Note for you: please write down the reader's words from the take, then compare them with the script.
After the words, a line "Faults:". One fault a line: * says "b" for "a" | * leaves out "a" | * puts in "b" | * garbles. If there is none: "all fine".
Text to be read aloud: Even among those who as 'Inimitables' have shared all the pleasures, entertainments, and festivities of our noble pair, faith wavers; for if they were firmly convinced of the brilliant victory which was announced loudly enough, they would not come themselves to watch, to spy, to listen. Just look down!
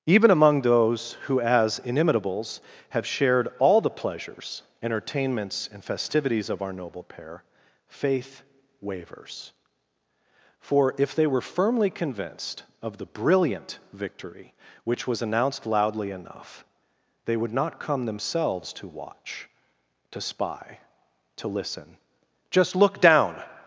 Even among those who as 'Inimitables' have shared all the pleasures, entertainments, and festivities of our noble pair, faith wavers; for if they were firmly convinced of the brilliant victory which was announced loudly enough, they would not come themselves to watch, to spy, to listen. Just look down!
Faults:
all fine